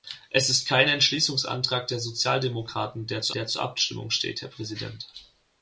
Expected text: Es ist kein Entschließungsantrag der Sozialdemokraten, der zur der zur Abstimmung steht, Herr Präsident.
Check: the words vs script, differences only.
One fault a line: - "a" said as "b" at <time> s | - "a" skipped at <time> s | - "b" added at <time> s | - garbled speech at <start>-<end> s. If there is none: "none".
none